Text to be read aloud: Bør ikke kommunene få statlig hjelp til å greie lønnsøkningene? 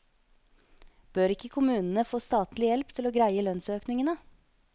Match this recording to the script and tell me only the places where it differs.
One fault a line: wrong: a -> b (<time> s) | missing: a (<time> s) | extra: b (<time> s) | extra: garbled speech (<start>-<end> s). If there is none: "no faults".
no faults